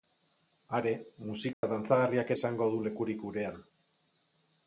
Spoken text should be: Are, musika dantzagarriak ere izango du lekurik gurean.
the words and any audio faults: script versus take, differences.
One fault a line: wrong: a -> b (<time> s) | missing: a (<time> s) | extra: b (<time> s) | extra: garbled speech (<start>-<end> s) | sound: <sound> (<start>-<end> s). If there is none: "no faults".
sound: dropout (1.5-1.6 s)
missing: ere (2.3 s)